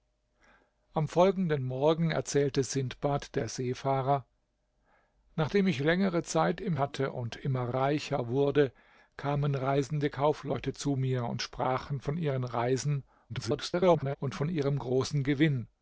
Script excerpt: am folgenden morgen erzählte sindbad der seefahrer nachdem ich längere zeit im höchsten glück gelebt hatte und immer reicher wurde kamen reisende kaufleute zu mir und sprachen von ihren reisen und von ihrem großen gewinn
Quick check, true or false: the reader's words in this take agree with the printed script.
false